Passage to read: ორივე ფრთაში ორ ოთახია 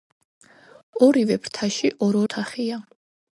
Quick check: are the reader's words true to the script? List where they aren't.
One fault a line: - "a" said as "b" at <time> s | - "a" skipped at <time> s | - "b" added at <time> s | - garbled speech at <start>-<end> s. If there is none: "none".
none